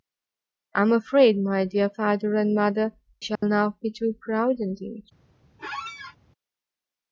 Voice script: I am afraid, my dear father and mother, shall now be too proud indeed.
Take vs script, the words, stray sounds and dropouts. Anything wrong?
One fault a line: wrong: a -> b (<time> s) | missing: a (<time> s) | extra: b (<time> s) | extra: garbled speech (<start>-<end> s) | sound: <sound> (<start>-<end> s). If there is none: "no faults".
sound: dropout (3.4-3.4 s)
sound: squeak (5.6-6.2 s)